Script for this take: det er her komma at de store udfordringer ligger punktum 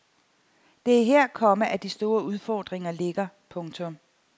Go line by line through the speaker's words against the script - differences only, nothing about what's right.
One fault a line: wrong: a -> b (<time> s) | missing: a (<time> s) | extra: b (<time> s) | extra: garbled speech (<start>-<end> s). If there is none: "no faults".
no faults